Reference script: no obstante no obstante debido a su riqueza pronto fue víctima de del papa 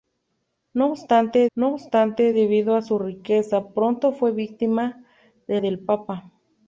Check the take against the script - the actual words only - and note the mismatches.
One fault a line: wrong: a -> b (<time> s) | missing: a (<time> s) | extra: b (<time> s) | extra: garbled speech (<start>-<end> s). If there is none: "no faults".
no faults